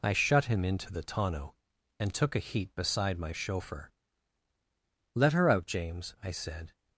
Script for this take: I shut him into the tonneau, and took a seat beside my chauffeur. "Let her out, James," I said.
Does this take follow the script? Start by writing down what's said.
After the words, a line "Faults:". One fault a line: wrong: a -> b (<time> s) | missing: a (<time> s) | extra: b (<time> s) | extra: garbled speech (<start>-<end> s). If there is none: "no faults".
I shut him into the tonneau, and took a heat beside my chauffeur. "Let her out, James," I said.
Faults:
wrong: seat -> heat (2.4 s)